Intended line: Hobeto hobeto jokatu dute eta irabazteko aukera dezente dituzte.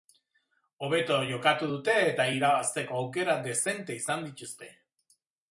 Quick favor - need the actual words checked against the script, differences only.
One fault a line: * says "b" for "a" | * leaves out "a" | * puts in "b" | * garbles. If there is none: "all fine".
* leaves out "hobeto"
* puts in "izan"